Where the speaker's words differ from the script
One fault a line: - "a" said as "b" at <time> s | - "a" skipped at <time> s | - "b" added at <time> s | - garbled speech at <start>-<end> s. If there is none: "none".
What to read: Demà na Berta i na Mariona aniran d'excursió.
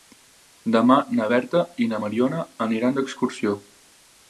none